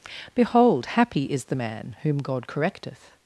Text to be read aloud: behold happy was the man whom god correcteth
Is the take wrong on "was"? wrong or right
wrong